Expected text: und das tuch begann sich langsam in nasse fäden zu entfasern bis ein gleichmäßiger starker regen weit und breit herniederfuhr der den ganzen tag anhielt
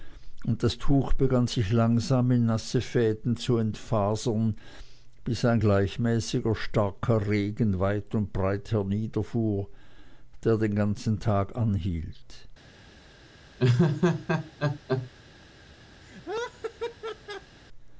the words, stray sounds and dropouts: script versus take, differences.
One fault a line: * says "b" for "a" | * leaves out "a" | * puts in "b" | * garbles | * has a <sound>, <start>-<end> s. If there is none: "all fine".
* has a laugh, 13.6-15.1 s
* has a laugh, 16.0-17.6 s